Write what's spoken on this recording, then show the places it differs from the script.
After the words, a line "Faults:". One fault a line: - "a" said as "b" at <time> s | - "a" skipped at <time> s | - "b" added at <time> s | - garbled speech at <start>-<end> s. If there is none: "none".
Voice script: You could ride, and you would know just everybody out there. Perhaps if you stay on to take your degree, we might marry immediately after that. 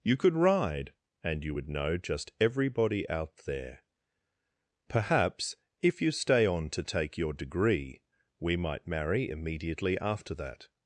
You could ride, and you would know just everybody out there. Perhaps if you stay on to take your degree, we might marry immediately after that.
Faults:
none